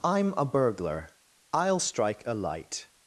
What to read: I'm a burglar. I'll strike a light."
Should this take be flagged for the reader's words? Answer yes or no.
no